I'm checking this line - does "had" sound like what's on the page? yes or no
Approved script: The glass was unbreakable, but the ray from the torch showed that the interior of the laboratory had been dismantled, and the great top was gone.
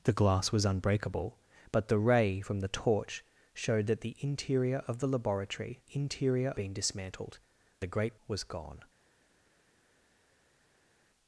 no